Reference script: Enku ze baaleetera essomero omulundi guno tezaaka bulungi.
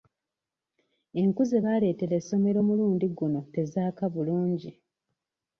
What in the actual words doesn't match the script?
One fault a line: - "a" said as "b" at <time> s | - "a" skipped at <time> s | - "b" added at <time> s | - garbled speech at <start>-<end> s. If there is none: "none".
none